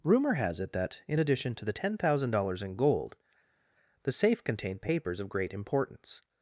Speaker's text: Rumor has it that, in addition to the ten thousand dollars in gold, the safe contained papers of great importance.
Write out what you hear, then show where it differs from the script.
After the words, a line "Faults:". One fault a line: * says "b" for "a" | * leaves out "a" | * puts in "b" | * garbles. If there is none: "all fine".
Rumor has it that, in addition to the ten thousand dollars in gold, the safe contained papers of great importance.
Faults:
all fine